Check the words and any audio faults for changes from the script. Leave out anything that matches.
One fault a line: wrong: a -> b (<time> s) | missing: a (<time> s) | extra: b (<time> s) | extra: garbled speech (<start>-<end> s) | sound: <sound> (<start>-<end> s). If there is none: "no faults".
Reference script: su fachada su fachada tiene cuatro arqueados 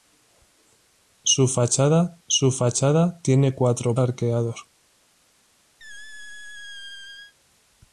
sound: squeak (5.8-7.3 s)